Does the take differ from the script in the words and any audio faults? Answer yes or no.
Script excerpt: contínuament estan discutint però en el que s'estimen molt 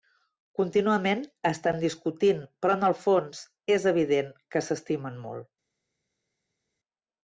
yes